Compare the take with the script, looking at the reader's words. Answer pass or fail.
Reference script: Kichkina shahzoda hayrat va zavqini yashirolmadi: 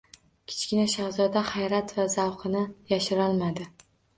pass